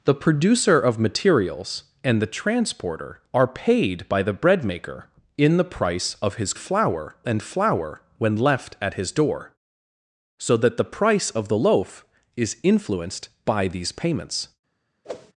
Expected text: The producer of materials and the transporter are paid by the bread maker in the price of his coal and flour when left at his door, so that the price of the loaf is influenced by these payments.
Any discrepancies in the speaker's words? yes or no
yes